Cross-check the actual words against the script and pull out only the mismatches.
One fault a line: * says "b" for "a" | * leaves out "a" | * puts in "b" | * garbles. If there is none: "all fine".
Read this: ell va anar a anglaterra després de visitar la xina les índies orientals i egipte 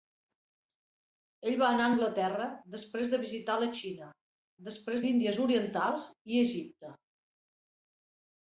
* says "després" for "les"